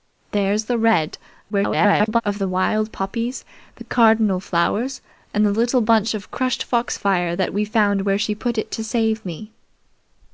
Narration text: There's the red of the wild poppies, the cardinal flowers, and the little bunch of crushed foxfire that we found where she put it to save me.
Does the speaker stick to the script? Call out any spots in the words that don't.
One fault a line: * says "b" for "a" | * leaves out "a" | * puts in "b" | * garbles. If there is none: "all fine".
* garbles